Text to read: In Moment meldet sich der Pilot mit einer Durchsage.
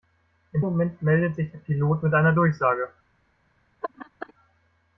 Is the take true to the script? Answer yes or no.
yes